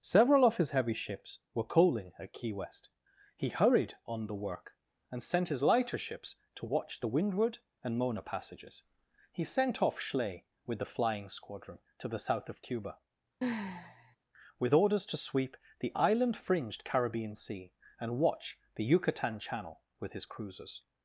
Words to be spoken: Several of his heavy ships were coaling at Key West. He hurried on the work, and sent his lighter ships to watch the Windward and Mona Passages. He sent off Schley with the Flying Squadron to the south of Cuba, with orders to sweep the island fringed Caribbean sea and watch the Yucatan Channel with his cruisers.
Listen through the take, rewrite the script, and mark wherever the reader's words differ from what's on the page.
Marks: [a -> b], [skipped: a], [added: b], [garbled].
Several of his heavy ships were coaling at Key West. He hurried on the work, and sent his lighter ships to watch the Windward and Mona Passages. He sent off Schley with the Flying Squadron to the south of Cuba, with orders to sweep the island fringed Caribbean sea and watch the Yucatan Channel with his cruisers.